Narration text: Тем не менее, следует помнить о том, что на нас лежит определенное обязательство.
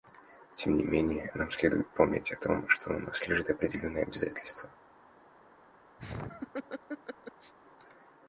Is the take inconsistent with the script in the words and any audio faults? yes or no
yes